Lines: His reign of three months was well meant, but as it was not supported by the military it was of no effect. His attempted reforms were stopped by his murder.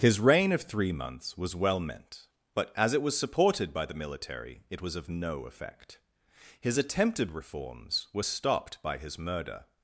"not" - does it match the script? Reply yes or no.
no